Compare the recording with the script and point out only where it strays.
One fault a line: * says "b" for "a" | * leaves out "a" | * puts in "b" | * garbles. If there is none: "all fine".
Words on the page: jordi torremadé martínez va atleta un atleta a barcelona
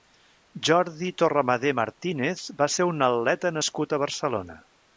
* says "ser" for "atleta"
* puts in "nascut"